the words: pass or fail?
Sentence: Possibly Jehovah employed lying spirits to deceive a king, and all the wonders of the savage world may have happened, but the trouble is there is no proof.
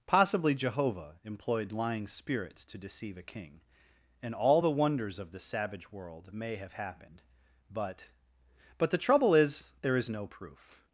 fail